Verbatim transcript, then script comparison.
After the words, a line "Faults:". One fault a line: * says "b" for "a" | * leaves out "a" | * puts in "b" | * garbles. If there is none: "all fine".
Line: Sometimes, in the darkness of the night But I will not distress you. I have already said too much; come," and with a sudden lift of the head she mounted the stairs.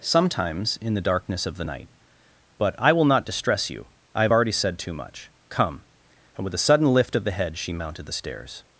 Sometimes, in the darkness of the night But I will not distress you. I have already said too much; come," and with a sudden lift of the head she mounted the stairs.
Faults:
all fine